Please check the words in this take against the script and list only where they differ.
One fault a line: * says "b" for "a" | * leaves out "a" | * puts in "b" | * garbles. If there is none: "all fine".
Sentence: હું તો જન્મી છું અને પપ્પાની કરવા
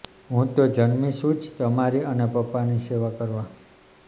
* puts in "જ તમારી"
* puts in "સેવા"